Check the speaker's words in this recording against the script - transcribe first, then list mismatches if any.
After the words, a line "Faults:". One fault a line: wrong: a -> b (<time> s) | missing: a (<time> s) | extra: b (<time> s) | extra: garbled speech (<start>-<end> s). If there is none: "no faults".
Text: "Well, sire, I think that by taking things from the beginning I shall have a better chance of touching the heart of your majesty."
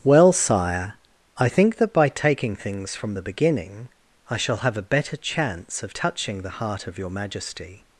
"Well, sire, I think that by taking things from the beginning I shall have a better chance of touching the heart of your majesty."
Faults:
no faults